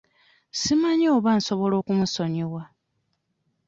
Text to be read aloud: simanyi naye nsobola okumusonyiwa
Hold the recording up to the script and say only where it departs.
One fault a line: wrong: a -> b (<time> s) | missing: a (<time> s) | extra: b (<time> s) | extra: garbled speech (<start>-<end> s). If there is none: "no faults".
wrong: naye -> oba (1.1 s)